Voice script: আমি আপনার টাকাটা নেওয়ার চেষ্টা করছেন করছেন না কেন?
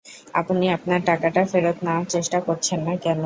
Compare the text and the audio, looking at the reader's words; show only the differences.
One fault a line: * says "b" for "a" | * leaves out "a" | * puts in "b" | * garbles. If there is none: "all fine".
* says "আপনি" for "আমি"
* puts in "ফেরত"
* leaves out "করছেন"